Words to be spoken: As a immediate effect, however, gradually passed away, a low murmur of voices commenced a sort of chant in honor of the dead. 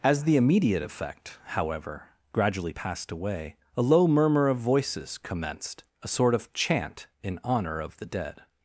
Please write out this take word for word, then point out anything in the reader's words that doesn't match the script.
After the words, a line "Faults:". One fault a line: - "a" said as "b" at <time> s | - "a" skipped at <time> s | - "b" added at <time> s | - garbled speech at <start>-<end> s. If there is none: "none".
As the immediate effect, however, gradually passed away, a low murmur of voices commenced a sort of chant in honor of the dead.
Faults:
- "a" said as "the" at 0.2 s